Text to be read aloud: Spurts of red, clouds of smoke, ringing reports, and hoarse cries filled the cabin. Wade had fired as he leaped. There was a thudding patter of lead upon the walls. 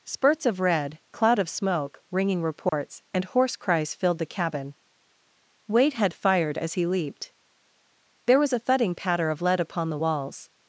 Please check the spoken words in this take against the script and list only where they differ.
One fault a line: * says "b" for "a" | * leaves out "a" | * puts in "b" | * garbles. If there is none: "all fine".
* says "cloud" for "clouds"